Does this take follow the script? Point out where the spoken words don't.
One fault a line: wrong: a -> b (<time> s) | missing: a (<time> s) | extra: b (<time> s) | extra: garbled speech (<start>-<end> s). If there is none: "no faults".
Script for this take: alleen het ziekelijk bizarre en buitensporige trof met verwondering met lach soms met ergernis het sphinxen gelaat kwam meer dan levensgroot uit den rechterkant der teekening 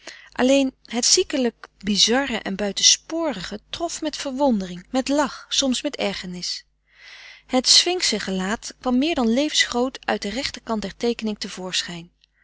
no faults